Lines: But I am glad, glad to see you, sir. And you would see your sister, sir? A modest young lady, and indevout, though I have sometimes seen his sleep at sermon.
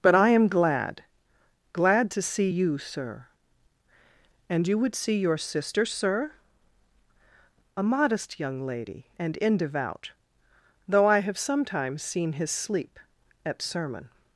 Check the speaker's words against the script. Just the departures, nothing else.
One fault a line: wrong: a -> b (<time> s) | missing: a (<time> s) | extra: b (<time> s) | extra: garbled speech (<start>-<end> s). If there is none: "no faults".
no faults